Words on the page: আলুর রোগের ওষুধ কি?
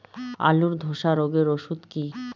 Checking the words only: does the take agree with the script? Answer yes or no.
no